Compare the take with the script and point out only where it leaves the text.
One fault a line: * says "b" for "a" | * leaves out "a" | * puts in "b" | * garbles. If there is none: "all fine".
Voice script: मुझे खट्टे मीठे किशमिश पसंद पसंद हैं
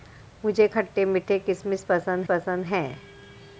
all fine